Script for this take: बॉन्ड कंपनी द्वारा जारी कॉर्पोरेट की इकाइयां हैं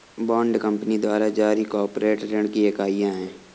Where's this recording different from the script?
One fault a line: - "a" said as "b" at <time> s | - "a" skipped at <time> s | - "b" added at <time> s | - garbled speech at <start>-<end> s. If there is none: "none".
- "ऋण" added at 2.2 s